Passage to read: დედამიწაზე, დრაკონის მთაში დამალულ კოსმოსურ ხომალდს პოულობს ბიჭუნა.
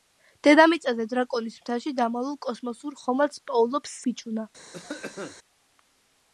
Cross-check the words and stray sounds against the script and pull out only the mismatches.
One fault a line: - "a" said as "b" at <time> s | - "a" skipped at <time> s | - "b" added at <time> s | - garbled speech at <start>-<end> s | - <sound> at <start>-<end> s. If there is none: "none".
- cough at 4.7-5.4 s